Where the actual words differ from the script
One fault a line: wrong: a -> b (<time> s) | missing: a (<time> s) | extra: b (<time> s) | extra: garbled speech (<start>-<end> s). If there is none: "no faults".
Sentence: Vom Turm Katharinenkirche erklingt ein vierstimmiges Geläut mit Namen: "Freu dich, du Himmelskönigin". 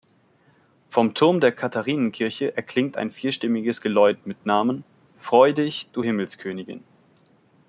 extra: der (1.4 s)